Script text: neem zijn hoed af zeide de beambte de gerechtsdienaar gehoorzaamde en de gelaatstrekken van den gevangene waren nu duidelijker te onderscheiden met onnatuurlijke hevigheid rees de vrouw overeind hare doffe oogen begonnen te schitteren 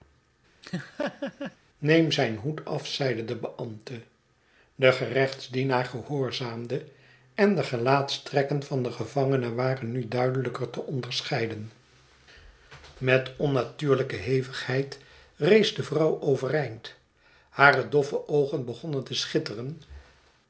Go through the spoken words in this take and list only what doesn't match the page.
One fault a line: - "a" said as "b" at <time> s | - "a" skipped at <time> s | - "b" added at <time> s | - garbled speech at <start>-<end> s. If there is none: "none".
none